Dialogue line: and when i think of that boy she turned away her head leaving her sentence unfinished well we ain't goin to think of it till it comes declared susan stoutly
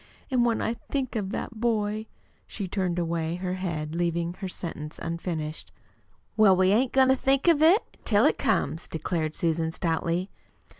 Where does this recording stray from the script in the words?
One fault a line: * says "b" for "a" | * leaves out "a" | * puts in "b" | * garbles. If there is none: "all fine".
all fine